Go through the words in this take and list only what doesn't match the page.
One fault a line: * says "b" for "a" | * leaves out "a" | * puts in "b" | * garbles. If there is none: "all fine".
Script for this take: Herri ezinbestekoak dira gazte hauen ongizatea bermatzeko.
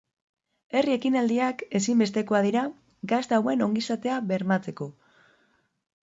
* puts in "ekinaldiak"